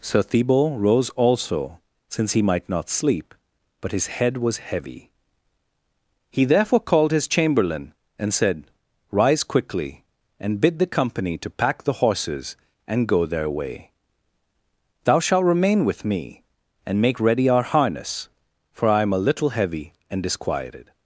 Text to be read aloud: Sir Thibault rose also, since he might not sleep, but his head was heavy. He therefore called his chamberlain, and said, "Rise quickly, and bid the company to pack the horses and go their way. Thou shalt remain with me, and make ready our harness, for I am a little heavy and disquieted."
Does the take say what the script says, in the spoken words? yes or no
yes